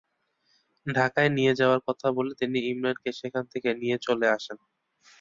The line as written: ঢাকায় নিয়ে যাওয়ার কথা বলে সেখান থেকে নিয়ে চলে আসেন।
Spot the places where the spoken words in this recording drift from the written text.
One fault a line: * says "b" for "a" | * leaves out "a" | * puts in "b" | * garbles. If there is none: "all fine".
* puts in "তিনি ইমরানকে"